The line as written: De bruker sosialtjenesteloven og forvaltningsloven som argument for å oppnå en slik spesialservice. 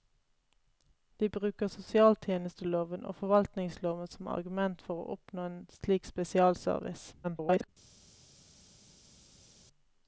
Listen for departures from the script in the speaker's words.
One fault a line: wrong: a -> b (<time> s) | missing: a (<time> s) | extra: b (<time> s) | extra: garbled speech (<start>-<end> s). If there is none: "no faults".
extra: garbled speech (7.2-7.7 s)